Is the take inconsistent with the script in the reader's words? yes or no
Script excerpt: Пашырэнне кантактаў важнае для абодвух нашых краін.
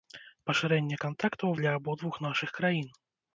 yes